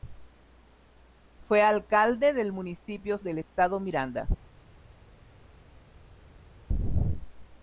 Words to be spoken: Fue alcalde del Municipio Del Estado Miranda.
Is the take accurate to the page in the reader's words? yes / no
yes